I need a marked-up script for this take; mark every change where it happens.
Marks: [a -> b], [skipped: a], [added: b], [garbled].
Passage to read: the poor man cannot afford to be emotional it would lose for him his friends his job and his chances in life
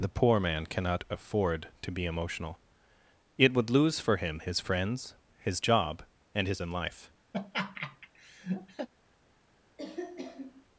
the poor man cannot afford to be emotional it would lose for him his friends his job and his [skipped: chances] in life